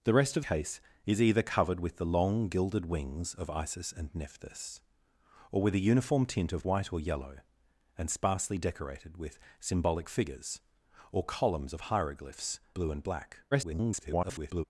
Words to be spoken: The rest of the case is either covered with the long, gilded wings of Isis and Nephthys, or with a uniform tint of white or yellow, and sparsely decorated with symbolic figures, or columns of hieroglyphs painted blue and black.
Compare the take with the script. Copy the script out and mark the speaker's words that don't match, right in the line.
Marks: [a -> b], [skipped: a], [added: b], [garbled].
The rest of [skipped: the] case is either covered with the long, gilded wings of Isis and Nephthys, or with a uniform tint of white or yellow, and sparsely decorated with symbolic figures, or columns of hieroglyphs [skipped: painted] blue and black. [garbled]